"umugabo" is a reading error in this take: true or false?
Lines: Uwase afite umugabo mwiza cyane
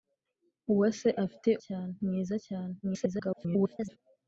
true